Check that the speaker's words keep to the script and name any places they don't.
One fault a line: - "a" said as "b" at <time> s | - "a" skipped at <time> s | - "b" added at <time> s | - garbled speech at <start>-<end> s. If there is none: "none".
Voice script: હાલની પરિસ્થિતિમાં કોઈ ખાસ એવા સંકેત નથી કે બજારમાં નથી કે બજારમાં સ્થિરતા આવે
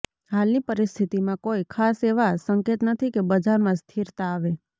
- "નથી કે બજારમાં" skipped at 3.8 s